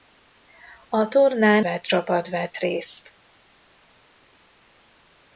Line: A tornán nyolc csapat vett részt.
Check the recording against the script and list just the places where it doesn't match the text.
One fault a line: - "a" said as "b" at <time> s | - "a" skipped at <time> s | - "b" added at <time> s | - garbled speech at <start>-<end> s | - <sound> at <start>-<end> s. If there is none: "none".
- "nyolc" said as "vett" at 1.6 s